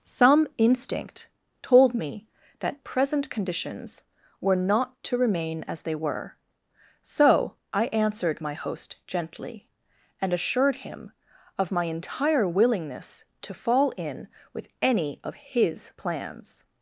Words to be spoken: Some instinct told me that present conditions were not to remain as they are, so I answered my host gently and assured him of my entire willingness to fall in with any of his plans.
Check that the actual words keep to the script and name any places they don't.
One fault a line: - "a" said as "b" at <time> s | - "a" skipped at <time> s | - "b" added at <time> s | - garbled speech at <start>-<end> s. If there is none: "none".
- "are" said as "were" at 6.0 s